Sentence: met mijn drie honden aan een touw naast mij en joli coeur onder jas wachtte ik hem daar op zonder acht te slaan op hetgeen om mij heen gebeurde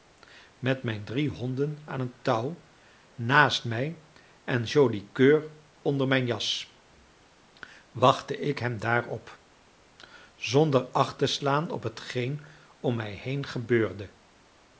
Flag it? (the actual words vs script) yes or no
yes